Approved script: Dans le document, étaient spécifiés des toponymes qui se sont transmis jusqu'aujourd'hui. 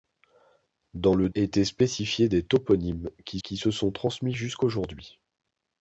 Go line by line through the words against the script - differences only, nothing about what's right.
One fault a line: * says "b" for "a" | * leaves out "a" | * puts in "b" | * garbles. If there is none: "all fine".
* leaves out "document"
* puts in "qui"